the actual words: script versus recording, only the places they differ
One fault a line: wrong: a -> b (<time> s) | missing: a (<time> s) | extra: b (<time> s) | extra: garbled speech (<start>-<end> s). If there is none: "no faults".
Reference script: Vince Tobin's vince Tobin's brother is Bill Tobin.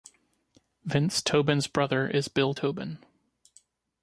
missing: vince Tobin's (1.7 s)